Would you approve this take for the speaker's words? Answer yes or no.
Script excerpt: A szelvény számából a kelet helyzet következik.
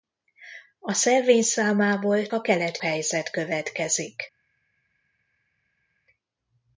yes